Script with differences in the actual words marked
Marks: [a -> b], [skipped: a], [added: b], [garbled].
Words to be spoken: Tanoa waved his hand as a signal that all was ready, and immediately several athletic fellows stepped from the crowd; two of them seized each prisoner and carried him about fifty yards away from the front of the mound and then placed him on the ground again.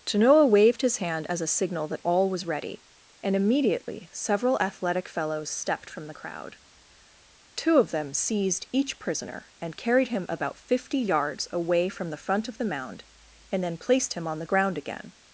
Tanoa waved his hand as a signal that all was ready, and immediately several athletic fellows stepped from the crowd; two of them seized each prisoner and carried him about fifty yards away from the front of the mound and then placed him on the ground again.